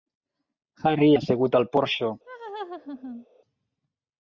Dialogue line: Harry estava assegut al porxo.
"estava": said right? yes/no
no